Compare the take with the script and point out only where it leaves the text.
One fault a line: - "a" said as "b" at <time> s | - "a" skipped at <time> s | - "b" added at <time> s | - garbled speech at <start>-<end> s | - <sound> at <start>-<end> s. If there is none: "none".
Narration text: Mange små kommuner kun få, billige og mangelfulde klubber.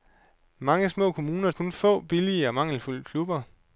none